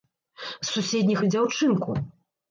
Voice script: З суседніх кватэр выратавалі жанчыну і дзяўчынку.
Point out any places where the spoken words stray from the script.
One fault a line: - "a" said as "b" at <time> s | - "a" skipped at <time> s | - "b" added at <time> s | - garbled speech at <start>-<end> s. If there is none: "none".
- "кватэр выратавалі жанчыну" skipped at 1.2 s